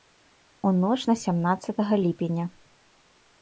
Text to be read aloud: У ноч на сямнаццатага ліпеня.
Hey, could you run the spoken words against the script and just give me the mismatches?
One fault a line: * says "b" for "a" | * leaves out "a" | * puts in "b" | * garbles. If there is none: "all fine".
all fine